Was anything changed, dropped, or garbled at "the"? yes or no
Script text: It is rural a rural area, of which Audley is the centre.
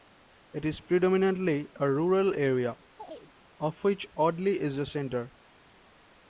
no